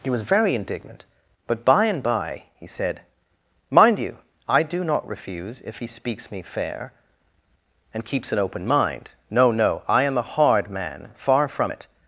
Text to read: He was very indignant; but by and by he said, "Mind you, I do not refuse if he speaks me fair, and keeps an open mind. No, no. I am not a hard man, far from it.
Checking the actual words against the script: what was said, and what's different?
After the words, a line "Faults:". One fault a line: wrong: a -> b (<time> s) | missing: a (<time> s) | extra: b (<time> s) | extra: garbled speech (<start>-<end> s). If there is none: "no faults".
He was very indignant; but by and by he said, "Mind you, I do not refuse if he speaks me fair, and keeps an open mind. No, no. I am a hard man, far from it.
Faults:
missing: not (10.2 s)